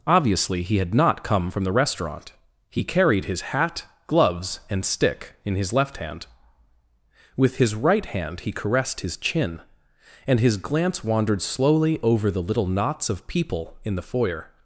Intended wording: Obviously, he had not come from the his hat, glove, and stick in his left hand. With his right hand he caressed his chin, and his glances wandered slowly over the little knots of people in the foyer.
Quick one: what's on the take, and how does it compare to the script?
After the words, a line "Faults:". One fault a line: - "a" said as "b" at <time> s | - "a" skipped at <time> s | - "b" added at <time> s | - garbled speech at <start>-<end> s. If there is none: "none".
Obviously, he had not come from the restaurant. He carried his hat, gloves, and stick in his left hand. With his right hand he caressed his chin, and his glance wandered slowly over the little knots of people in the foyer.
Faults:
- "restaurant He carried" added at 1.7 s
- "glove" said as "gloves" at 4.1 s
- "glances" said as "glance" at 10.6 s